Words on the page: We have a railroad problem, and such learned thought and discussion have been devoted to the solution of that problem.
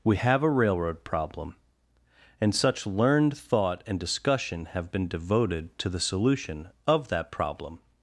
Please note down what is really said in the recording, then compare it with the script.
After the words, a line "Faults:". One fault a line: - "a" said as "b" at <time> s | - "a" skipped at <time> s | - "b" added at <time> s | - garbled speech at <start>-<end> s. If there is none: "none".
We have a railroad problem, and such learned thought and discussion have been devoted to the solution of that problem.
Faults:
none